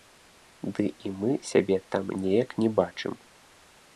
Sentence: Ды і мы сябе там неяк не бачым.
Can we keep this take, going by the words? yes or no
yes